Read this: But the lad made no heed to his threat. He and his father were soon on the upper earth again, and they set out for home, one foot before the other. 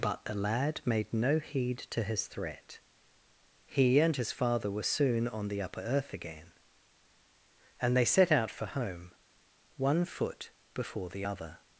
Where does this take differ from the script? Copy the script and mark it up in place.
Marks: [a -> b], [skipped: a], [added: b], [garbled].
But the lad made no heed to his threat. He and his father were soon on the upper earth again, and they set out for home, one foot before the other.